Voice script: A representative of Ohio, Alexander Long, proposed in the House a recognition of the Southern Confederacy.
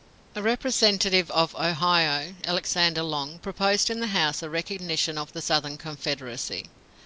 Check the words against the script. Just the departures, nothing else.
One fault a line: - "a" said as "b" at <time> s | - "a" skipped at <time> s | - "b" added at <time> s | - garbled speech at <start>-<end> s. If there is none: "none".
none